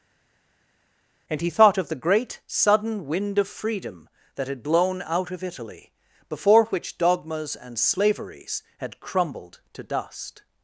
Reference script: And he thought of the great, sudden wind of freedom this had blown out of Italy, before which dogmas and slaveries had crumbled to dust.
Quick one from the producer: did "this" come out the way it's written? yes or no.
no